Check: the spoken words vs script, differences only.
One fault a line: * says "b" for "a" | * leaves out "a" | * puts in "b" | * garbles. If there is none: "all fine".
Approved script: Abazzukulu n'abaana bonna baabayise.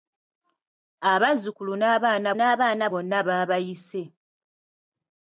* puts in "n'abaana"